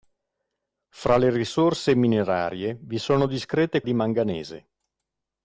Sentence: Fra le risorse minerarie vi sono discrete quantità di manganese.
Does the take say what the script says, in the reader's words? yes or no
no